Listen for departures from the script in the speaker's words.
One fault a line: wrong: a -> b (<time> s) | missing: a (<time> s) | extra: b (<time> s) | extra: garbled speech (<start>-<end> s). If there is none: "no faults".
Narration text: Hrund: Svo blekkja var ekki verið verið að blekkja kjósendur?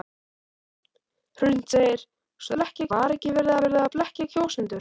no faults